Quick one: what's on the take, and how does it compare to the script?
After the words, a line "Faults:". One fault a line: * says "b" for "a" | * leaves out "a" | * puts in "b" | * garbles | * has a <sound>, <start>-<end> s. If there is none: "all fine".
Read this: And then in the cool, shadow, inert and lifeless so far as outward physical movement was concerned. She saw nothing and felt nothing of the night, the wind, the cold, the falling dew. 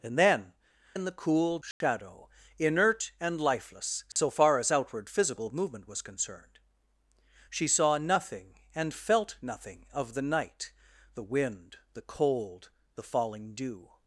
And then in the cool, shadow, inert and lifeless so far as outward physical movement was concerned. She saw nothing and felt nothing of the night, the wind, the cold, the falling dew.
Faults:
* has a dropout, 1.7-1.8 s
* has a dropout, 4.1-4.2 s